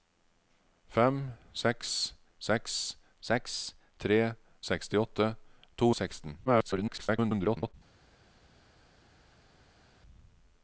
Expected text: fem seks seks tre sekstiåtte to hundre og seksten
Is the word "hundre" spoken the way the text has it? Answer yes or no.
no